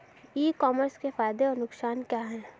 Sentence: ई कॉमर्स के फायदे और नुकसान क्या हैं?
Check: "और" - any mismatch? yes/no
no